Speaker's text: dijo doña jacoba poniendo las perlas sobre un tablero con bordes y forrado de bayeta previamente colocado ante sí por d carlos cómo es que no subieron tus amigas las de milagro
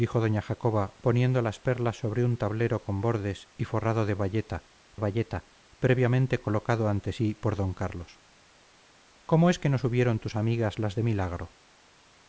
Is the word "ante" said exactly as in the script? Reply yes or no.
yes